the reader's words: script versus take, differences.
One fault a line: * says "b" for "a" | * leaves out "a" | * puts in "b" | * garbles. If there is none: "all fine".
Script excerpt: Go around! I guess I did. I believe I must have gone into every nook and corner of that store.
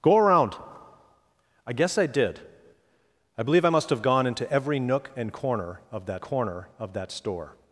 * puts in "corner of that"